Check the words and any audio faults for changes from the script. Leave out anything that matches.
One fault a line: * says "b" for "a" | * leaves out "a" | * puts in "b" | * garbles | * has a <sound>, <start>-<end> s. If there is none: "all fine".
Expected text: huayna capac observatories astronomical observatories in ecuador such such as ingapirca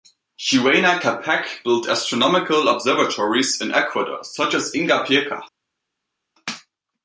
* says "built" for "observatories"
* leaves out "such"